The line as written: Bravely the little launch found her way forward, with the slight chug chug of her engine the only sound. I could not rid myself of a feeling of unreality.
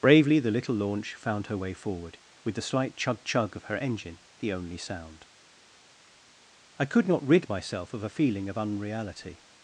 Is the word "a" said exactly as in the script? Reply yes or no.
yes